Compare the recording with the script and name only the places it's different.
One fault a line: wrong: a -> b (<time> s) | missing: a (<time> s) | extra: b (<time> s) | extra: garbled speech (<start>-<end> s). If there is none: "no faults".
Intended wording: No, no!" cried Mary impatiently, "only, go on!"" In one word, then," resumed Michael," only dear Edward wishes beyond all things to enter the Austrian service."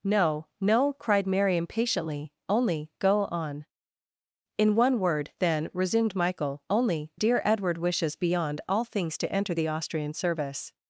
no faults